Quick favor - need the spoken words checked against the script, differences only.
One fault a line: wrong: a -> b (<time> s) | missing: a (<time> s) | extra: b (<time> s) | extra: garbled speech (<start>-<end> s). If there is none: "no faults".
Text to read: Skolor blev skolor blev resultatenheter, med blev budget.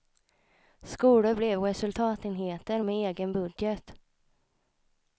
missing: skolor blev (1.6 s)
wrong: blev -> egen (2.9 s)